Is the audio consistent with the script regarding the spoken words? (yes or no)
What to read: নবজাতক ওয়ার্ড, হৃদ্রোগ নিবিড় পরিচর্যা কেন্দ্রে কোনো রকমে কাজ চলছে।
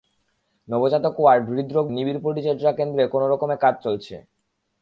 yes